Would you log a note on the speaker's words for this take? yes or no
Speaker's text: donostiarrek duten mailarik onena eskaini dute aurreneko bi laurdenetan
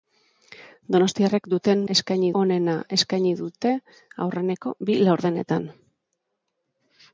yes